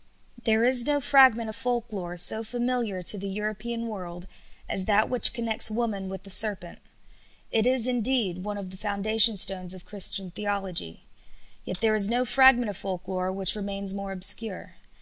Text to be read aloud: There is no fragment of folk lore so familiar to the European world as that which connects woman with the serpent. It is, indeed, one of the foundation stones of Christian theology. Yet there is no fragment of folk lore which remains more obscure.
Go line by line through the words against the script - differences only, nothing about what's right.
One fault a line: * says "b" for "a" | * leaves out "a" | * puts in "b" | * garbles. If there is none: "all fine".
all fine